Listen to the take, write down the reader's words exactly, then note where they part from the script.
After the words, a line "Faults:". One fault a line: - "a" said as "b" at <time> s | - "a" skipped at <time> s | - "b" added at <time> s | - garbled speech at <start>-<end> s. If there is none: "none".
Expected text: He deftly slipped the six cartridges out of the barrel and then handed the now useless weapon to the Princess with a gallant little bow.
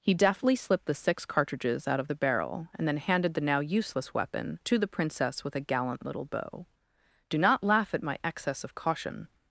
He deftly slipped the six cartridges out of the barrel and then handed the now useless weapon to the Princess with a gallant little bow. "Do not laugh at my excess of caution
Faults:
- "Do not laugh at my excess of caution" added at 7.3 s